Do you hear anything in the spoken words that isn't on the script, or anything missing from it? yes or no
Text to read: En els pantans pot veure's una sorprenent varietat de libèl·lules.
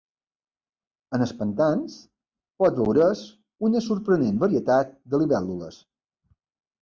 no